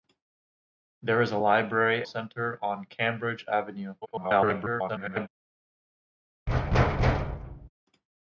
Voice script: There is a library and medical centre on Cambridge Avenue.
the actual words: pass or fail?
fail